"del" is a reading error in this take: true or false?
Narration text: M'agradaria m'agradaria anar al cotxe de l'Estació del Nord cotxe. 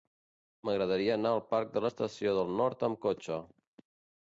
false